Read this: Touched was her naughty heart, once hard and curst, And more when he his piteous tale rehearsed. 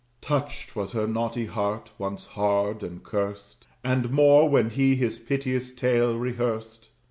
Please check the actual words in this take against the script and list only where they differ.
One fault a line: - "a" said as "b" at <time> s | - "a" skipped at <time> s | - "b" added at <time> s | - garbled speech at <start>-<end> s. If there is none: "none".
none